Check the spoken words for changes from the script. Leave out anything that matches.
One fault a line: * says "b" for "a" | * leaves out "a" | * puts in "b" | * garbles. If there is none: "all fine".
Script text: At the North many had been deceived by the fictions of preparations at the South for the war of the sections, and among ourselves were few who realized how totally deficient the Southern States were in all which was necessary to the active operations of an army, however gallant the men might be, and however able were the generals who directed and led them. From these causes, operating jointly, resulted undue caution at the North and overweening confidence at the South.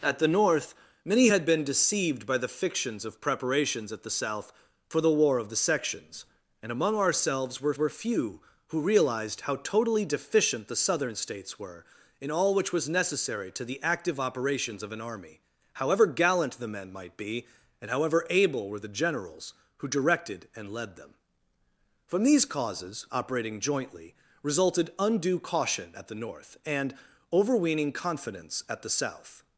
* puts in "were"